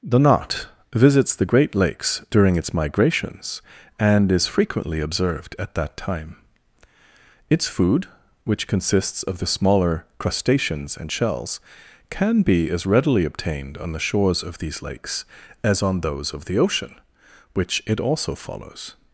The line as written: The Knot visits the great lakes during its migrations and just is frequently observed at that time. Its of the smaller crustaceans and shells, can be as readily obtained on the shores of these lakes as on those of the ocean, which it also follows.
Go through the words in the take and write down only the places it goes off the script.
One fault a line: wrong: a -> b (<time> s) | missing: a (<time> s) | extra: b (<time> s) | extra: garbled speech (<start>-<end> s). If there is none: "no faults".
missing: just (4.3 s)
extra: food which consists (7.7 s)